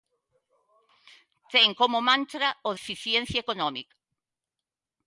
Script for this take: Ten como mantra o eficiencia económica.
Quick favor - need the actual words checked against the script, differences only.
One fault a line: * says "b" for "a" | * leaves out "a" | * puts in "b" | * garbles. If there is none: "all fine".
all fine